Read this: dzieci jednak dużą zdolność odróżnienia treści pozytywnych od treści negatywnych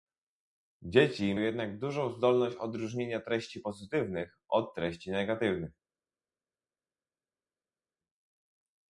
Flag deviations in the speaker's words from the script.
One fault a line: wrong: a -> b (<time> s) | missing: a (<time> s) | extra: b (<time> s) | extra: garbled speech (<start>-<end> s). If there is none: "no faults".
no faults